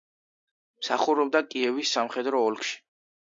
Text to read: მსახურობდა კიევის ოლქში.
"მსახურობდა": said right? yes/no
yes